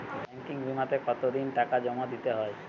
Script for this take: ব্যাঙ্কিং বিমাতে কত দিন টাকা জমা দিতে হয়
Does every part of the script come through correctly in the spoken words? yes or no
yes